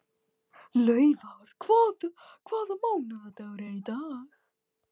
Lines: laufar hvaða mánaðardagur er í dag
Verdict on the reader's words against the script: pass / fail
pass